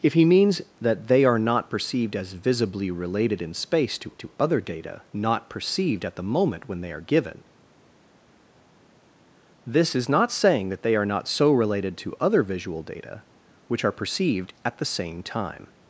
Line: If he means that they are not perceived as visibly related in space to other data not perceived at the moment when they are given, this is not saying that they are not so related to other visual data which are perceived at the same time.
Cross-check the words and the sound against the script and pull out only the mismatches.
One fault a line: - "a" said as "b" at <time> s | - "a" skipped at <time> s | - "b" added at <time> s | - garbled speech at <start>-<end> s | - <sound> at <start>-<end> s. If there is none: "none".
- "to" added at 4.2 s